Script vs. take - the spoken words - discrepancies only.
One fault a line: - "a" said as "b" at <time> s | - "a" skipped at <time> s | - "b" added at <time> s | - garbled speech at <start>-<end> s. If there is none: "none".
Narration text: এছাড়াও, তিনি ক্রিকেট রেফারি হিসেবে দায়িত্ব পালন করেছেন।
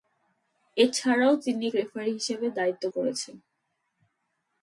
- "ক্রিকেট" skipped at 1.7 s
- "পালন" skipped at 2.8 s